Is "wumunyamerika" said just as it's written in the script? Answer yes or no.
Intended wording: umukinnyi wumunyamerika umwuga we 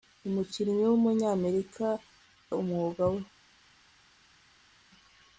yes